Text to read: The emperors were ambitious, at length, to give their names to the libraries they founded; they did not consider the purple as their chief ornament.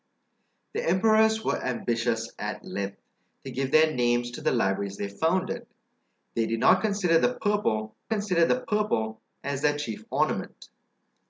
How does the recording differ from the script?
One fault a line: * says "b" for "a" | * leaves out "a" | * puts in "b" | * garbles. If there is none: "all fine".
* puts in "consider the purple"